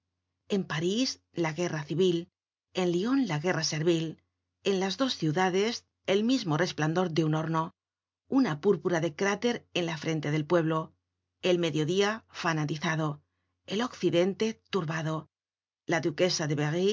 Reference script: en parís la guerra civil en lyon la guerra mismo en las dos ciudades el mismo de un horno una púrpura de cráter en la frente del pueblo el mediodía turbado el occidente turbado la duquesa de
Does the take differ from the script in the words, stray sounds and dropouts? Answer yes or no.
yes